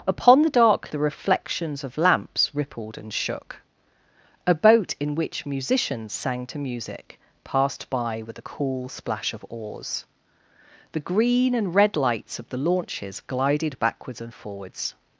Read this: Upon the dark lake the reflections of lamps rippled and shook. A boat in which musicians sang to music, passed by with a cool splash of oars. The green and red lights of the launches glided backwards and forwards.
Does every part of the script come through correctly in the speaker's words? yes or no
no